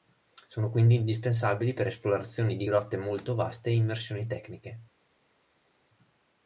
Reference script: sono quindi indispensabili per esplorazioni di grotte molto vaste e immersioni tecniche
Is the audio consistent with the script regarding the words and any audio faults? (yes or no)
yes